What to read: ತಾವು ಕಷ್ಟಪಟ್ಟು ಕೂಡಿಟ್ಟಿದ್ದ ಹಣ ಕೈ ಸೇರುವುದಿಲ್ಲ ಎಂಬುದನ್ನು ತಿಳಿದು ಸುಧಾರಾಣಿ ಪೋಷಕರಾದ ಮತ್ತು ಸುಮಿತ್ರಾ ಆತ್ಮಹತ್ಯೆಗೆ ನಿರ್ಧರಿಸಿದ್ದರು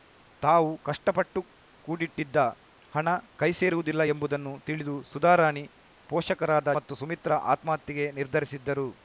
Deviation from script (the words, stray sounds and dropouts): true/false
false